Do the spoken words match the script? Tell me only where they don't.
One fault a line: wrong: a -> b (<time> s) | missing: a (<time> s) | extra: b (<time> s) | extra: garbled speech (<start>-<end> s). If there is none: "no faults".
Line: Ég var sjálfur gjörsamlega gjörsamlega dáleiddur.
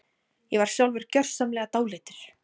missing: gjörsamlega (1.7 s)